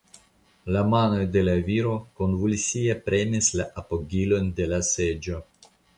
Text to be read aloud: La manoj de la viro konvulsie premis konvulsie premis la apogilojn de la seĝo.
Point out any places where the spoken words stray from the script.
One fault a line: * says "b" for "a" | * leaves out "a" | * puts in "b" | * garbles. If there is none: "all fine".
* leaves out "konvulsie premis"